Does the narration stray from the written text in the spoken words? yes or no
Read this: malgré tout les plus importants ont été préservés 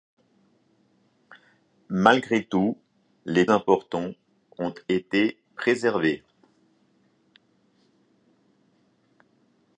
yes